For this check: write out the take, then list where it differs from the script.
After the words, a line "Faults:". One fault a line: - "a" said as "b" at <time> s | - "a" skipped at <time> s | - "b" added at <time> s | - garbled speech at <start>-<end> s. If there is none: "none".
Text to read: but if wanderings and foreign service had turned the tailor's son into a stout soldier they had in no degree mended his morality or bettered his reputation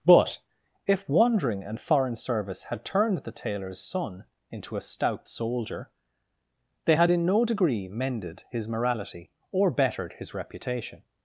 but if wandering and foreign service had turned the tailor's son into a stout soldier they had in no degree mended his morality or bettered his reputation
Faults:
- "wanderings" said as "wandering" at 1.1 s